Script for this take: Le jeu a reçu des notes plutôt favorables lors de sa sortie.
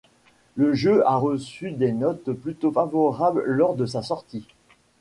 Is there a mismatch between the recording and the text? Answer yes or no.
no